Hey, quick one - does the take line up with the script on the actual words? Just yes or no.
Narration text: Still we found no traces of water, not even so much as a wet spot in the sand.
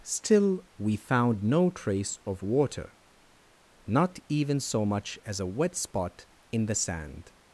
no